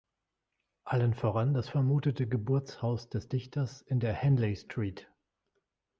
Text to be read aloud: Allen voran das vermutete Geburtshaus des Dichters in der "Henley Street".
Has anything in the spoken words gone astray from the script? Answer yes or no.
no